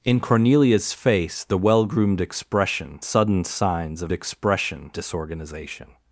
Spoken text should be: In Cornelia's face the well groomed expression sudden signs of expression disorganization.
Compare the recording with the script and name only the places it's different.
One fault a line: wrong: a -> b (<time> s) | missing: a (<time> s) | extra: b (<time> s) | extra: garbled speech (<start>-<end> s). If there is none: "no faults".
no faults